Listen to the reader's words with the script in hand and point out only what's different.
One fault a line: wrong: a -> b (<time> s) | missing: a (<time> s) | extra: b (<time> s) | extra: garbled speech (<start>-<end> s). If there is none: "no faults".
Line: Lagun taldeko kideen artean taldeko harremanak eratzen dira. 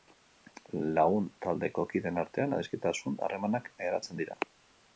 wrong: taldeko -> adiskidetasun (2.6 s)